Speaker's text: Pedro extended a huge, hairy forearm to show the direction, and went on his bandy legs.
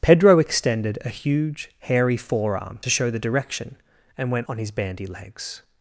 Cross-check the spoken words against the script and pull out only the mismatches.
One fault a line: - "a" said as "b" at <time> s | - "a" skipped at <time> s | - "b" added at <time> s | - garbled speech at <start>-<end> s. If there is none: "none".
none